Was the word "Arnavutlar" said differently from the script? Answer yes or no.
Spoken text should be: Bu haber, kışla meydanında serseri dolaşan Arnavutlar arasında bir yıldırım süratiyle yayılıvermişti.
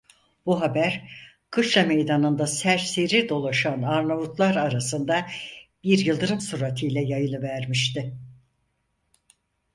no